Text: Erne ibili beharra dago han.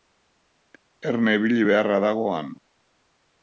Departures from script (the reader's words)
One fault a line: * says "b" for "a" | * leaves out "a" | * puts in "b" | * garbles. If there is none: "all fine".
all fine